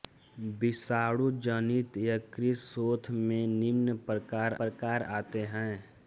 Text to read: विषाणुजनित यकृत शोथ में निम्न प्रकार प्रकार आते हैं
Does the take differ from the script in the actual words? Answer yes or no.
no